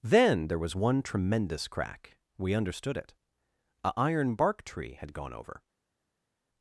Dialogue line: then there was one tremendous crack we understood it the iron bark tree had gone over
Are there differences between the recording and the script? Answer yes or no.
yes